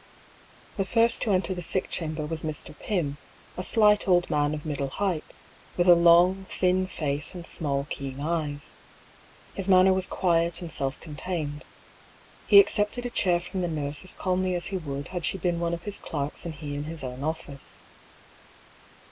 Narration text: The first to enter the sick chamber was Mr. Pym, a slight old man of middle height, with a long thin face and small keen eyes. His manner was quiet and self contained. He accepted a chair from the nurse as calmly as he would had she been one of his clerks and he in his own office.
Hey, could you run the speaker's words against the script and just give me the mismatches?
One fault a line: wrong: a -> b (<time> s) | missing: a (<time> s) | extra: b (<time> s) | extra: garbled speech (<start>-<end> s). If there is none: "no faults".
no faults